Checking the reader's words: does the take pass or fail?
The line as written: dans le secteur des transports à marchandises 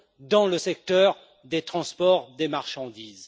fail